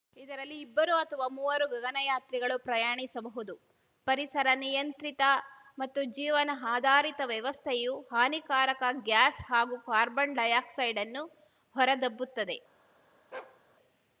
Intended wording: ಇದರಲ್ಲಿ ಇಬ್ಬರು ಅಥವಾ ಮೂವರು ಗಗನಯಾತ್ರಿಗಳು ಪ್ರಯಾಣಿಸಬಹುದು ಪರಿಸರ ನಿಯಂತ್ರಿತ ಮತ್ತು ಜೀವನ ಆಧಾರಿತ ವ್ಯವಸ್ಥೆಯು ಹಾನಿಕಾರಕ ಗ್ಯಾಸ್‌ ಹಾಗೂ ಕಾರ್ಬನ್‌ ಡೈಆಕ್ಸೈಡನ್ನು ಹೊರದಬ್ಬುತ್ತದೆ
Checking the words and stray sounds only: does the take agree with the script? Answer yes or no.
no